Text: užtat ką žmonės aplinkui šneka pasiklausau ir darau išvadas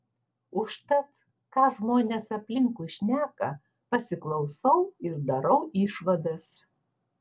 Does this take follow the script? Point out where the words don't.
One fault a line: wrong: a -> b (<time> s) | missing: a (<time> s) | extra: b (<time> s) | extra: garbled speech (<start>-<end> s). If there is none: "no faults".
no faults